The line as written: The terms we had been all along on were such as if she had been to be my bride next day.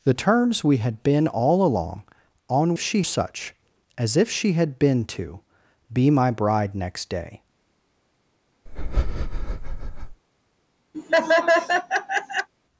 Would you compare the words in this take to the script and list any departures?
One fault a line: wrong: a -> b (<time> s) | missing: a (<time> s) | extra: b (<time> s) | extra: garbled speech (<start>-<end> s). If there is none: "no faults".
wrong: were -> she (2.8 s)